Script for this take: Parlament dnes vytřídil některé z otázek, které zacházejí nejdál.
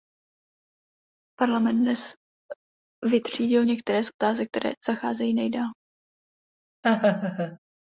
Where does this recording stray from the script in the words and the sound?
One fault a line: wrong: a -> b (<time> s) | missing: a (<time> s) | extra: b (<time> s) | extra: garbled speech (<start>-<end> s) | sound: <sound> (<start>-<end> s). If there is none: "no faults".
sound: laugh (6.8-7.6 s)